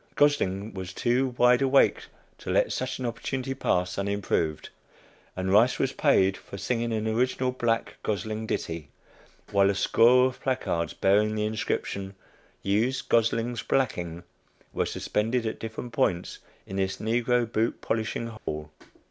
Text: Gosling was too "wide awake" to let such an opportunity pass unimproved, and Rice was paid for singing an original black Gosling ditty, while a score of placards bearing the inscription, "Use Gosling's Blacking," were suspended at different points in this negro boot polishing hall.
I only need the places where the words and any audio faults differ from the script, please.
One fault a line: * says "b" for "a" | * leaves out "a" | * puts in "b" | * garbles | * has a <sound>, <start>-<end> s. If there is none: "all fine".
* has a dropout, 18.4-18.5 s